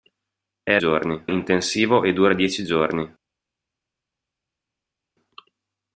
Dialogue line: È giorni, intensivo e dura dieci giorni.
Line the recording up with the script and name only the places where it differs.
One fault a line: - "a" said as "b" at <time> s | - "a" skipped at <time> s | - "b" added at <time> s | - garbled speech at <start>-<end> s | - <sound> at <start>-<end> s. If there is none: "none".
none